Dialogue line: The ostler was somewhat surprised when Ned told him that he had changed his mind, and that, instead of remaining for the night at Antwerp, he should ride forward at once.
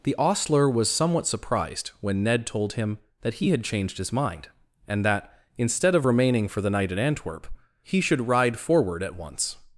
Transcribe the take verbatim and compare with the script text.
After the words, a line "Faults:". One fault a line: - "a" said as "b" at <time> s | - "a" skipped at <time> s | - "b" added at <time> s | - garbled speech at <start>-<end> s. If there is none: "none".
The ostler was somewhat surprised when Ned told him that he had changed his mind, and that, instead of remaining for the night at Antwerp, he should ride forward at once.
Faults:
none